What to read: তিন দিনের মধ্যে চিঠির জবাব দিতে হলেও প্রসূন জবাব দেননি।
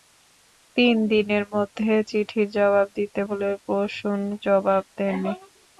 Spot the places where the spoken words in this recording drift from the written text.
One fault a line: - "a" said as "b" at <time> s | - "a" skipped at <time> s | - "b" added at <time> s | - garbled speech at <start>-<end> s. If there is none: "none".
none